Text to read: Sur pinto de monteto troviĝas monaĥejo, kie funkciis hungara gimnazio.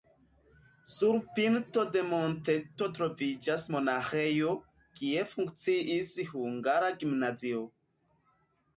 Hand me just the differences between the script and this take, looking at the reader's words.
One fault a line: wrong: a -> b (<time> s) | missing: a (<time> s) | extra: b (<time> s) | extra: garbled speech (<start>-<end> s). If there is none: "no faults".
no faults